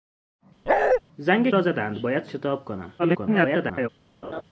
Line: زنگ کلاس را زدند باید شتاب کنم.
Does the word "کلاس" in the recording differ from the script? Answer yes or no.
yes